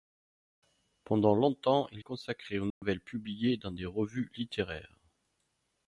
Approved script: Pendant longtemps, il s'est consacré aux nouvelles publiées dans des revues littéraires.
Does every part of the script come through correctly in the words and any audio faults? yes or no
no